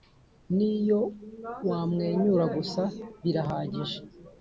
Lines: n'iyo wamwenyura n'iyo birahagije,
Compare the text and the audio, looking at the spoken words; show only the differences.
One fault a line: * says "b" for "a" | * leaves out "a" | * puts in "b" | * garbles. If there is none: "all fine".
* says "gusa" for "n'iyo"